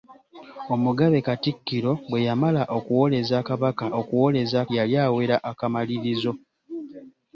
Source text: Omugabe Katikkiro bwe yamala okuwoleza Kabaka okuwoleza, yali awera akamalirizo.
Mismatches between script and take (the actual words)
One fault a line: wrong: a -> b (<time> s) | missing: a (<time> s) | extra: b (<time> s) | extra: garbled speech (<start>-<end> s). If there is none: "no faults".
no faults